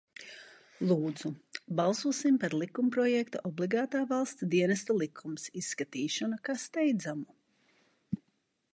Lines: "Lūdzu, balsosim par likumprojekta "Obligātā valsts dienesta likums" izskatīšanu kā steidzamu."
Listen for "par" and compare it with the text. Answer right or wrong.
right